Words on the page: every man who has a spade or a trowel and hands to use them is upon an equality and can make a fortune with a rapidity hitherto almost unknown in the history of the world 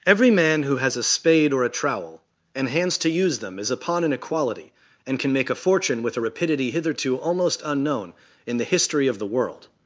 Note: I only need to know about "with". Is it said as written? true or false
true